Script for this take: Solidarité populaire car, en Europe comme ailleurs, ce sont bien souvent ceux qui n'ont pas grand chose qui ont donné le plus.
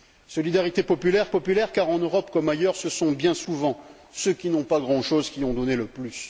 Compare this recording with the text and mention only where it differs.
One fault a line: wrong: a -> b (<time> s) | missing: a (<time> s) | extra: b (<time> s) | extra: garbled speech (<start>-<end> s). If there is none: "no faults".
extra: populaire (1.3 s)